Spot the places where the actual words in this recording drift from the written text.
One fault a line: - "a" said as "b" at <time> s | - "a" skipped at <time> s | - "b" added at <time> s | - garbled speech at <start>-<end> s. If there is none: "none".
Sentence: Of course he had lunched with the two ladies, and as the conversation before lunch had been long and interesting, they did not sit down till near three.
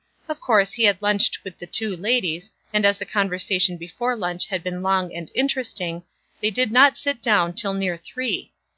none